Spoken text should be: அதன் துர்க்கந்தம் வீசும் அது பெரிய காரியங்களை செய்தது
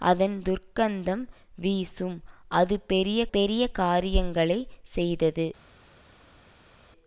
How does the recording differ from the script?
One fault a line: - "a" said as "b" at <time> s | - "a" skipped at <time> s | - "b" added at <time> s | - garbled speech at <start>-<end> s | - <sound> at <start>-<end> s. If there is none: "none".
- "பெரிய" added at 3.3 s